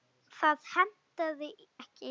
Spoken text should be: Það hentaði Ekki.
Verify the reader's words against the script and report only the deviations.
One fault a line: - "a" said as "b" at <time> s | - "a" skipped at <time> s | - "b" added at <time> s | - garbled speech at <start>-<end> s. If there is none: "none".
none